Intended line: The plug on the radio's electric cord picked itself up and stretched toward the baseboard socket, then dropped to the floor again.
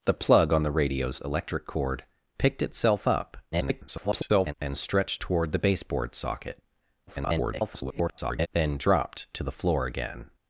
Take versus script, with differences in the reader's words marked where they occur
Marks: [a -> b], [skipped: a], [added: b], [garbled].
The plug on the radio's electric cord picked itself up [garbled] and stretched toward the baseboard socket, [garbled] then dropped to the floor again.